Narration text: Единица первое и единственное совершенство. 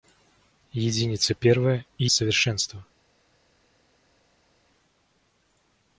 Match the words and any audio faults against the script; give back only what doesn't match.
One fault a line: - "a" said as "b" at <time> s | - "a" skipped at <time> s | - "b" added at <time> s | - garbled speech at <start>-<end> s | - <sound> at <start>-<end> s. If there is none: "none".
- "единственное" skipped at 2.1 s